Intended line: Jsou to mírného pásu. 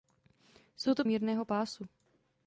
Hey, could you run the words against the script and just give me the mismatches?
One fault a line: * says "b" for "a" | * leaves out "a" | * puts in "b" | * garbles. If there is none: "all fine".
all fine